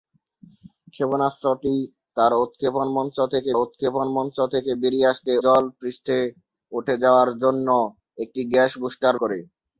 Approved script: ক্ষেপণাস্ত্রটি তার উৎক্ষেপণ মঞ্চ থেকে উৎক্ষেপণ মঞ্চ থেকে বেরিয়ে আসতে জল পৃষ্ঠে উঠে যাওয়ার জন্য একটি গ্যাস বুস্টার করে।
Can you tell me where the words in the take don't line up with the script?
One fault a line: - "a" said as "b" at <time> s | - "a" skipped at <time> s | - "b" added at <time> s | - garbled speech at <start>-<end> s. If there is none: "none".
none